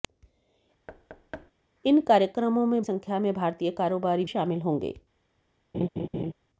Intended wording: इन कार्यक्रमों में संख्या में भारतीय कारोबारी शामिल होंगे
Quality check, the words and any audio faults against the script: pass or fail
fail